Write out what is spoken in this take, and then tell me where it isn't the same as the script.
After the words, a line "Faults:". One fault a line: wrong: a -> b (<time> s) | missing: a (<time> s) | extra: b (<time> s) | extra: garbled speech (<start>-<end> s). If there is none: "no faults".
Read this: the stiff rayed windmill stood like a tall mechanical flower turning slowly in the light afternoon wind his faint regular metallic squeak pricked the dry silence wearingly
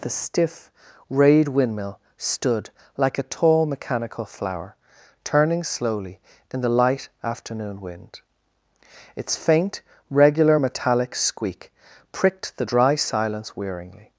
the stiff rayed windmill stood like a tall mechanical flower turning slowly in the light afternoon wind its faint regular metallic squeak pricked the dry silence wearingly
Faults:
wrong: his -> its (9.2 s)